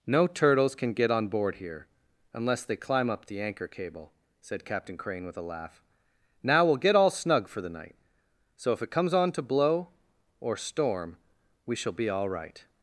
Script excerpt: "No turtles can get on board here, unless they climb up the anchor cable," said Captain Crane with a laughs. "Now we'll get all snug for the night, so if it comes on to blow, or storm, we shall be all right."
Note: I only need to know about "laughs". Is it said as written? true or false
false